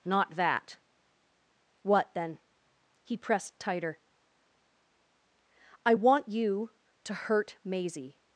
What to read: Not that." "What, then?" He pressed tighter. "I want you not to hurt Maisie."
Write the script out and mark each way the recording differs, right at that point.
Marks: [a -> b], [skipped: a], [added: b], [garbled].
Not that." "What, then?" He pressed tighter. "I want you [skipped: not] to hurt Maisie."